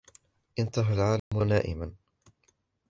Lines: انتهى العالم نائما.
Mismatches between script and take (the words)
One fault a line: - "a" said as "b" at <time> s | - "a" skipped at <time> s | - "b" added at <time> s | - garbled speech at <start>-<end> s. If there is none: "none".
none